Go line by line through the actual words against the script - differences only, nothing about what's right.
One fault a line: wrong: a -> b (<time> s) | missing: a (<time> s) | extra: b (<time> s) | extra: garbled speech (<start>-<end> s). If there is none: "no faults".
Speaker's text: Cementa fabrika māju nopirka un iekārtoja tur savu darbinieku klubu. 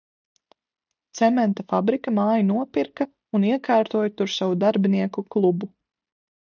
no faults